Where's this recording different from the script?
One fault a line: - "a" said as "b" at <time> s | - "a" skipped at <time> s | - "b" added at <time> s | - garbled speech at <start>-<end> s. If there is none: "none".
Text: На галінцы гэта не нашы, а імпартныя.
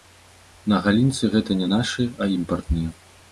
none